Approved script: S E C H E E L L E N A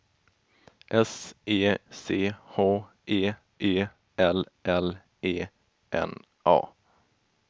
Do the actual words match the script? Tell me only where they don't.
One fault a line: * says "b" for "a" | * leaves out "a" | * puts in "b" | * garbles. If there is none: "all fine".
all fine